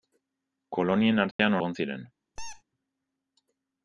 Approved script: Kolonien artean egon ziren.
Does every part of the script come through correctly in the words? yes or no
yes